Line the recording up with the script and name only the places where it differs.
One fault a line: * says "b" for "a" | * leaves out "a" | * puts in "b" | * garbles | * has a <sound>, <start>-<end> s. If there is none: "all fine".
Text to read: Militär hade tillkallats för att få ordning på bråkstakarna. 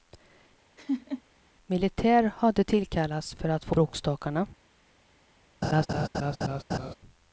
* has a laugh, 0.8-1.2 s
* leaves out "ordning på"
* has a laugh, 5.6-6.9 s